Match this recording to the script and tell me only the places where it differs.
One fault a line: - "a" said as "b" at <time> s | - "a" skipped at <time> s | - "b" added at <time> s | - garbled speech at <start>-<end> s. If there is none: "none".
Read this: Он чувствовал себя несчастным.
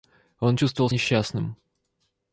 - "себя" skipped at 0.9 s